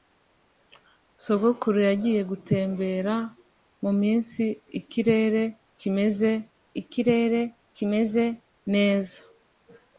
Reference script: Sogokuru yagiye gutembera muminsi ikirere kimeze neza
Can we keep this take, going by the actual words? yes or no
no